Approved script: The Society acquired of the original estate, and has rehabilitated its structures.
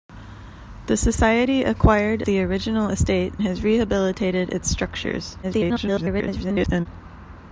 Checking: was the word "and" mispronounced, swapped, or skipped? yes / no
yes